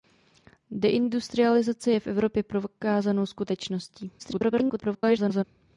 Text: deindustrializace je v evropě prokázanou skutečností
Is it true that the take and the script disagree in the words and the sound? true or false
true